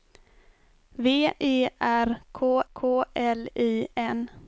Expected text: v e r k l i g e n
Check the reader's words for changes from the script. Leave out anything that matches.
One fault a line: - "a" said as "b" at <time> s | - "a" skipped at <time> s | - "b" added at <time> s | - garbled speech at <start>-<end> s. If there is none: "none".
- "k" added at 2.7 s
- "g e" skipped at 3.9 s